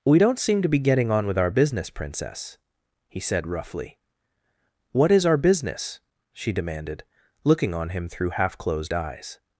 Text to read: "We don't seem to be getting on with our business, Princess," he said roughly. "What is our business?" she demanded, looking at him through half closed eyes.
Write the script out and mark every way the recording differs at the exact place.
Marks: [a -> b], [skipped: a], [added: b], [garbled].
"We don't seem to be getting on with our business, Princess," he said roughly. "What is our business?" she demanded, looking [at -> on] him through half closed eyes.